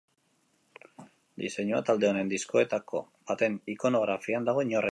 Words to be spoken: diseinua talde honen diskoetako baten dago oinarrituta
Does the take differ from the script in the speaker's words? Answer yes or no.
yes